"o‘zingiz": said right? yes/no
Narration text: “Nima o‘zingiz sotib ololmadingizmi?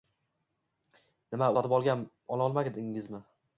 no